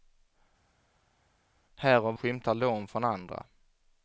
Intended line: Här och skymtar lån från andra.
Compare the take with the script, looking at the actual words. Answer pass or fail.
pass